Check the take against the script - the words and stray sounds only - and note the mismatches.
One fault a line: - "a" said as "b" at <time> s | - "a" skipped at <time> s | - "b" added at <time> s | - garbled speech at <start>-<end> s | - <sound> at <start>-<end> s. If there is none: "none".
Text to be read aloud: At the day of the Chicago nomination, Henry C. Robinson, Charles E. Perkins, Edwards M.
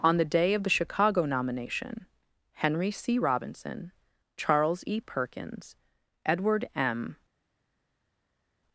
- "At" said as "On" at 0.0 s
- "Edwards" said as "Edward" at 6.2 s